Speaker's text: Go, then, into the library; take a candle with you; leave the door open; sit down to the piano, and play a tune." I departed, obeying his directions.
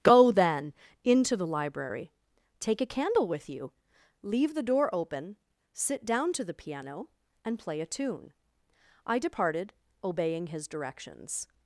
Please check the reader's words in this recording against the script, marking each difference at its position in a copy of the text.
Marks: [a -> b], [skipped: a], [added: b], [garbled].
Go, then, into the library; take a candle with you; leave the door open; sit down to the piano, and play a tune." I departed, obeying his directions.